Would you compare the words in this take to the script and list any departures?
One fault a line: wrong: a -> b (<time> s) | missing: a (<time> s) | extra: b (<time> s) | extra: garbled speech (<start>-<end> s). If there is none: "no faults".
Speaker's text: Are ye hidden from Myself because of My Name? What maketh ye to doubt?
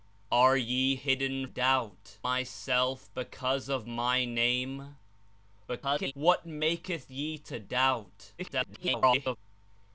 wrong: from -> doubt (1.4 s)
extra: garbled speech (5.7-6.1 s)
extra: garbled speech (8.4-9.4 s)